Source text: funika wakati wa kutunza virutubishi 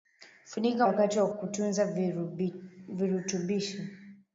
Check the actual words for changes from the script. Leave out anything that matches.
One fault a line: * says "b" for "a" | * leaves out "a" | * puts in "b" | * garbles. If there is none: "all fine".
all fine